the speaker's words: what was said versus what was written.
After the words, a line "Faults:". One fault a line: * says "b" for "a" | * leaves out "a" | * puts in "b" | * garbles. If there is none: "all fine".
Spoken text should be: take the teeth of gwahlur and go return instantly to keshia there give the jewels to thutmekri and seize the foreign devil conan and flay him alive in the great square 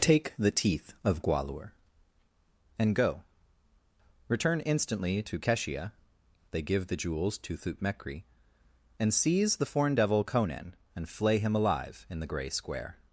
take the teeth of gwahlur and go return instantly to keshia they give the jewels to thutmekri and seize the foreign devil conan and flay him alive in the grey square
Faults:
* says "they" for "there"
* says "grey" for "great"